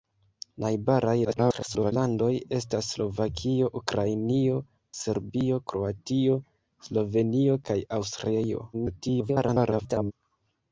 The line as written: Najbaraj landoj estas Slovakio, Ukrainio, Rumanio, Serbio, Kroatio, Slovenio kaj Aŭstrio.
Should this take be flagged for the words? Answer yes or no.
yes